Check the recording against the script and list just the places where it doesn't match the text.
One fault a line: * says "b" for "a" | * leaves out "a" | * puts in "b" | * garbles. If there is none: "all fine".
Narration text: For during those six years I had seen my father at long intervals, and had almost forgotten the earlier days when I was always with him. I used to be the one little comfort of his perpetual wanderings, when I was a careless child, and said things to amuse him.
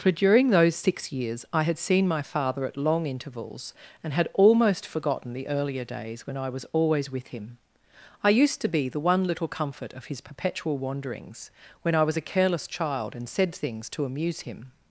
all fine